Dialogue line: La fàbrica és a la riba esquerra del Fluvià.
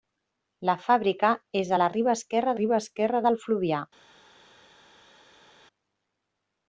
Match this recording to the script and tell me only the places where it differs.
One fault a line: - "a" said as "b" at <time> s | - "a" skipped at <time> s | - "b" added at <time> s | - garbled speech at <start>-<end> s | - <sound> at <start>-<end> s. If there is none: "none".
- "riba esquerra" added at 2.6 s